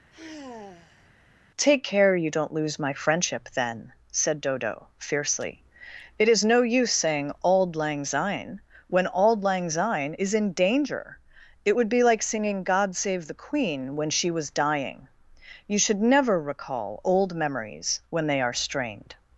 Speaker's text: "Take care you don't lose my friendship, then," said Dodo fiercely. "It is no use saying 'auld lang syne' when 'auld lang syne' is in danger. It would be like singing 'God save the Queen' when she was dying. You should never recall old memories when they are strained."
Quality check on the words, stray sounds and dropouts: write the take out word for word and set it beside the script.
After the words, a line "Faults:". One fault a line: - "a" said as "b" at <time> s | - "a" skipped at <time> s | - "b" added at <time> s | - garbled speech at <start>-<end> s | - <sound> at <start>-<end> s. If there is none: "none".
"Take care you don't lose my friendship, then," said Dodo fiercely. "It is no use saying 'auld lang syne' when 'auld lang syne' is in danger. It would be like singing 'God save the Queen' when she was dying. You should never recall old memories when they are strained."
Faults:
- sigh at 0.1-1.1 s